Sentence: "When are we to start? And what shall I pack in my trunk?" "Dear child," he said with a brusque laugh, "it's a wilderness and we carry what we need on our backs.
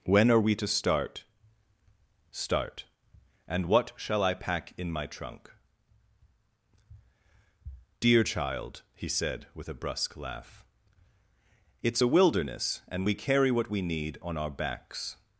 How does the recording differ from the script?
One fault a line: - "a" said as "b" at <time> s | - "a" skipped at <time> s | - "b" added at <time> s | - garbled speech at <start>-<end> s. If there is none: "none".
- "start" added at 2.3 s